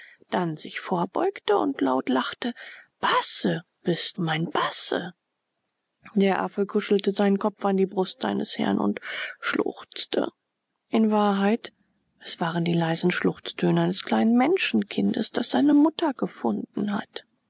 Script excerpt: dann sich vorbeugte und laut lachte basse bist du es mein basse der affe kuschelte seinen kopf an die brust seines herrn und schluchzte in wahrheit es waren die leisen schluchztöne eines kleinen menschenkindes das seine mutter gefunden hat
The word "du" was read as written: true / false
false